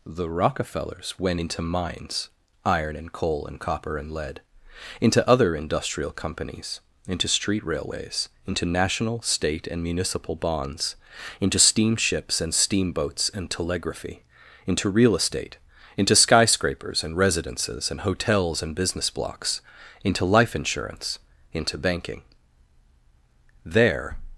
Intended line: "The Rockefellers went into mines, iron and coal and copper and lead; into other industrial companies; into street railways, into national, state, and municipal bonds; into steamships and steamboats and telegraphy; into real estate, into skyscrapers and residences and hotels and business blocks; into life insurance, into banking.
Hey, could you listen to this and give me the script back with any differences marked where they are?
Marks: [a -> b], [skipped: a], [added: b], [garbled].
"The Rockefellers went into mines, iron and coal and copper and lead; into other industrial companies; into street railways, into national, state, and municipal bonds; into steamships and steamboats and telegraphy; into real estate, into skyscrapers and residences and hotels and business blocks; into life insurance, into banking. [added: There]